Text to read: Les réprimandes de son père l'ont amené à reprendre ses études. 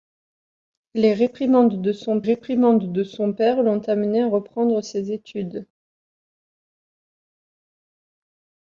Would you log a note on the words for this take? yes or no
yes